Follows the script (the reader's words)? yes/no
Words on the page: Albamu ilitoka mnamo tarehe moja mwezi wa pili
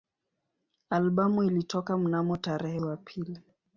no